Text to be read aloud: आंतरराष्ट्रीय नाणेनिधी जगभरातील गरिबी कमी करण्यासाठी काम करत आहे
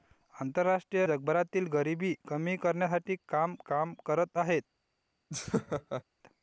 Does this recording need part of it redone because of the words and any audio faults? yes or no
yes